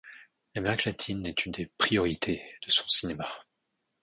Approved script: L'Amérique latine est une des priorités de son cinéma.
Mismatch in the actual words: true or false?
false